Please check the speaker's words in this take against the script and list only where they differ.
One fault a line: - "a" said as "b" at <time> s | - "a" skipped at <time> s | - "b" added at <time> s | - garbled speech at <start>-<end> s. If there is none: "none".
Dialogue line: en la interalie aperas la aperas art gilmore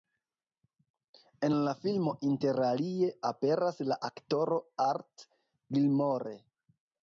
- "filmo" added at 1.8 s
- "aperas" said as "aktoro" at 4.1 s